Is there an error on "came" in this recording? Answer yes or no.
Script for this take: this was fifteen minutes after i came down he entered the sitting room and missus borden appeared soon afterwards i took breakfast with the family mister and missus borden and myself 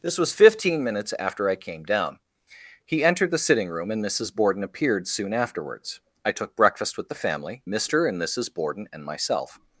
no